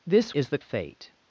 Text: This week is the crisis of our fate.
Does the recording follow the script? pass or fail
fail